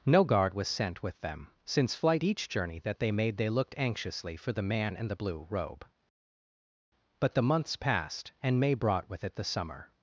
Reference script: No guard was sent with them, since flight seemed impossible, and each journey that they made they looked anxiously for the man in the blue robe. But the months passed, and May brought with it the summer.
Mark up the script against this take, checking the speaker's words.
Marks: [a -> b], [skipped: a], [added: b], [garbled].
No guard was sent with them, since flight [skipped: seemed impossible, and] each journey that they made they looked anxiously for the man in the blue robe. But the months passed, and May brought with it the summer.